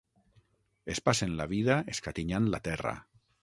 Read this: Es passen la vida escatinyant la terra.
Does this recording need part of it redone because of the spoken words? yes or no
no